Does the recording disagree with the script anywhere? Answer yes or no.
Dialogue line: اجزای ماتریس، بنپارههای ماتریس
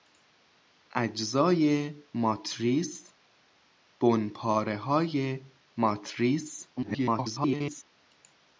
yes